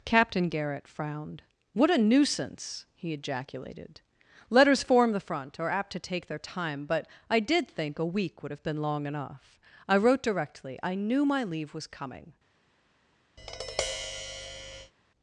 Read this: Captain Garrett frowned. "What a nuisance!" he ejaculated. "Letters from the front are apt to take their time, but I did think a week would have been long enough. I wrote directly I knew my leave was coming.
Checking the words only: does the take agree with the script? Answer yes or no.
no